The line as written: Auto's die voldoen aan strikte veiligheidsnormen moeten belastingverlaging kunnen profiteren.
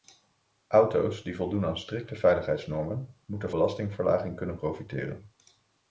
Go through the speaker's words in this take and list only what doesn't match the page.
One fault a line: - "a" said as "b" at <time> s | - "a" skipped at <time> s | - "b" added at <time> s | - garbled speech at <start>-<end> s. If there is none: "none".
none